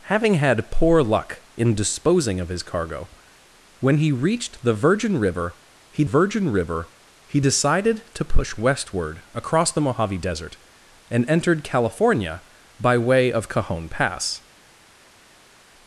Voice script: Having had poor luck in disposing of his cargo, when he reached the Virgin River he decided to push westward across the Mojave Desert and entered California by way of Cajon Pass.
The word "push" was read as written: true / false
true